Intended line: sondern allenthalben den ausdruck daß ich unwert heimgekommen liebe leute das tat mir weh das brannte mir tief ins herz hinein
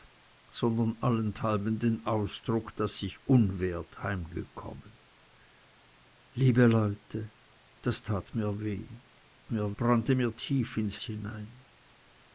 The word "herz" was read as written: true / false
false